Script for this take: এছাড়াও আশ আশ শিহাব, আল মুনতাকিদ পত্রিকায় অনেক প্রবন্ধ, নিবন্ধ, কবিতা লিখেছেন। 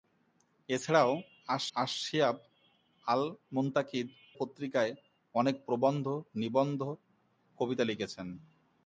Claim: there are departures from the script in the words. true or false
false